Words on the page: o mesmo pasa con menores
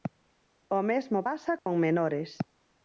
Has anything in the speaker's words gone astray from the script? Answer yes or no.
no